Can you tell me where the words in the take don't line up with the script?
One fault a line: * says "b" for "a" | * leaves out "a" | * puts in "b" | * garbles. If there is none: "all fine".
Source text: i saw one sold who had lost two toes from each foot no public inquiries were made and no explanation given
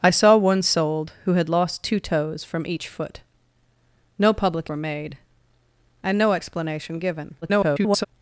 * leaves out "inquiries"
* garbles